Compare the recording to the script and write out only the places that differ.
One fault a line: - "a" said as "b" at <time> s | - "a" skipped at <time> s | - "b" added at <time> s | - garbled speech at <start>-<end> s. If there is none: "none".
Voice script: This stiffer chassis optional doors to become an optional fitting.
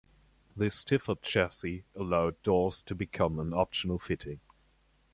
- "optional" said as "allowed" at 1.9 s